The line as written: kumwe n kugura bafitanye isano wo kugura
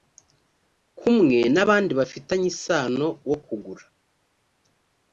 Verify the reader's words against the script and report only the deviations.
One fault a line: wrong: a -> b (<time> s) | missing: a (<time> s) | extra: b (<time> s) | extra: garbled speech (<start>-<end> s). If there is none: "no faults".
wrong: kugura -> abandi (1.6 s)